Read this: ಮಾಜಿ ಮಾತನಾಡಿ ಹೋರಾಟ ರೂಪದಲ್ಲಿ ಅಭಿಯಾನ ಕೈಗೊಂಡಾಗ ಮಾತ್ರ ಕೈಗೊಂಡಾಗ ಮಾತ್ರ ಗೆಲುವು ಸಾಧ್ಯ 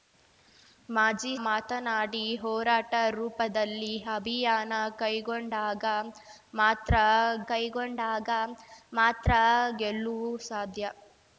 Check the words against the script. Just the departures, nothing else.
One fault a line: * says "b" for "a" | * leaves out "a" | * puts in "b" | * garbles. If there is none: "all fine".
all fine